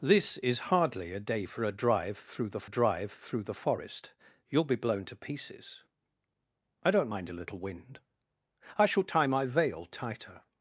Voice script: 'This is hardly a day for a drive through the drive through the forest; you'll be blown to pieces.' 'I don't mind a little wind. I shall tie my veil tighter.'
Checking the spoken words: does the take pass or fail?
pass